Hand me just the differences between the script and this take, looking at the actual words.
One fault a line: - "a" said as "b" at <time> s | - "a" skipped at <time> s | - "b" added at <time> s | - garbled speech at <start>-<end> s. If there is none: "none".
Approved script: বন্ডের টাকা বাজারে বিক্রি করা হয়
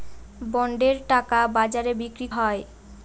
- "করা" skipped at 2.3 s